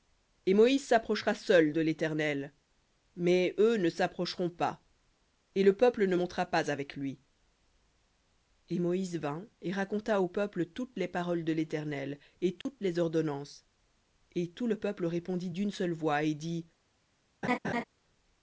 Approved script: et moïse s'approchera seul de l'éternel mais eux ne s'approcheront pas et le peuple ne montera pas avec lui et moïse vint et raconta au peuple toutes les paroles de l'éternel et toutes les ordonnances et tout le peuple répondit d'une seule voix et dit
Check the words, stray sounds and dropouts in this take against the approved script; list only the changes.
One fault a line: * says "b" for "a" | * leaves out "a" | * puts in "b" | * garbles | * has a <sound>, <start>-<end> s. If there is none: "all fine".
* has a dropout, 12.6-12.7 s
* has a laugh, 17.4-17.8 s